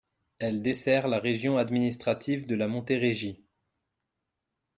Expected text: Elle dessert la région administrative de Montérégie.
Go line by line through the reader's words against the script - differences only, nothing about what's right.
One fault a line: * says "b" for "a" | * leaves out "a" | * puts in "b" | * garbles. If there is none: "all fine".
* puts in "la"